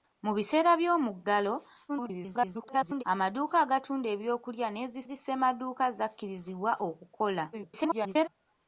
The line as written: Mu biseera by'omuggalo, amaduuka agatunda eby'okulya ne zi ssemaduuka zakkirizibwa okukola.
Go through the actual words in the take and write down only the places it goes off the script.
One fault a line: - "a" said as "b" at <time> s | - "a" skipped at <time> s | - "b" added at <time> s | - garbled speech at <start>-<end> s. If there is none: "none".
- garbled speech at 1.9-3.0 s
- "zi" added at 5.1 s
- garbled speech at 7.5-8.3 s